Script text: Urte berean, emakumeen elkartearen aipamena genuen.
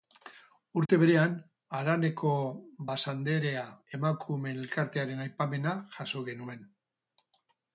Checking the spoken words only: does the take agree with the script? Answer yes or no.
no